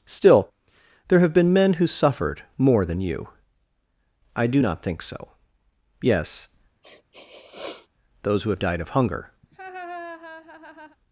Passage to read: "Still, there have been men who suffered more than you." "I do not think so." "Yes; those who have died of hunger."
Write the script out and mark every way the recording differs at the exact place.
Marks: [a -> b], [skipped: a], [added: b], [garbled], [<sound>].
"Still, there have been men who suffered more than you." "I do not think so." "Yes; [sniff] those who have died of hunger." [laugh]